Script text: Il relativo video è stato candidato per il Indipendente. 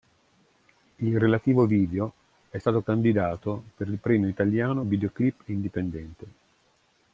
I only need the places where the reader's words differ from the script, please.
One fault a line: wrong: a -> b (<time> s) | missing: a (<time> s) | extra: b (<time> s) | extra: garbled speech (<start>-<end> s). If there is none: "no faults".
extra: Premio Italiano Videoclip (4.0 s)